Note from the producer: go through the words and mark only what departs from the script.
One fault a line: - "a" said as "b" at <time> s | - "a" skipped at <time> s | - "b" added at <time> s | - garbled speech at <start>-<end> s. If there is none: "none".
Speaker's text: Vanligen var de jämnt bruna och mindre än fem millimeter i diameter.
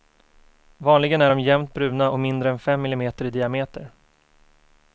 - "var" said as "är" at 1.2 s